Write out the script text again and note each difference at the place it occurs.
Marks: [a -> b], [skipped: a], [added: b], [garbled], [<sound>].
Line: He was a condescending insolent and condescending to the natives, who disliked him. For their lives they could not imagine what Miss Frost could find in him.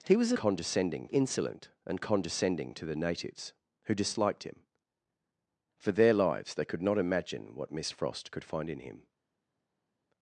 He was a condescending insolent and condescending to the natives, who disliked him. For their lives they could not imagine what Miss Frost could find in him.